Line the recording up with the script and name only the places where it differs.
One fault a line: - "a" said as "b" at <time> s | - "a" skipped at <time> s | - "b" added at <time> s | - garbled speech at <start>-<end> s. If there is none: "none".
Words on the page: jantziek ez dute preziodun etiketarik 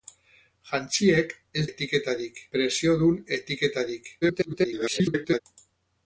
- "dute" said as "etiketarik" at 1.7 s
- garbled speech at 4.2-5.4 s